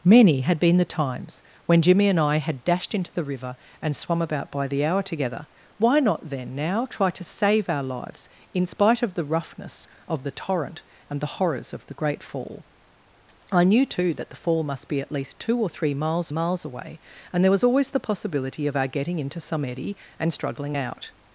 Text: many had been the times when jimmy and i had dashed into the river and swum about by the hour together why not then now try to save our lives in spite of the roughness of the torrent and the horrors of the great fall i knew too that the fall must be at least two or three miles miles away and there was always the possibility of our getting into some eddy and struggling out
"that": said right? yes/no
yes